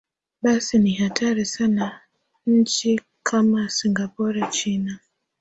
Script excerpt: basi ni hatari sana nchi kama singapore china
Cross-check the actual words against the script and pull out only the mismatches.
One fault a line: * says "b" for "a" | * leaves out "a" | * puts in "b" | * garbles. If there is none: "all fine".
all fine